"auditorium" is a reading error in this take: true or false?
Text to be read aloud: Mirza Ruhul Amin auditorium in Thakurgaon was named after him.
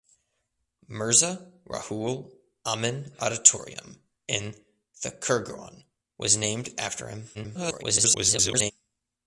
false